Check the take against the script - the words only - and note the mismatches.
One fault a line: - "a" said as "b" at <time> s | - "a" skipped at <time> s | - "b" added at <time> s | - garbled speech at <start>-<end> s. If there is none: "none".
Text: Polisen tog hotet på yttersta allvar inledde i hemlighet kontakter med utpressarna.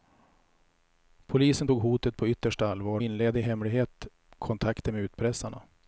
none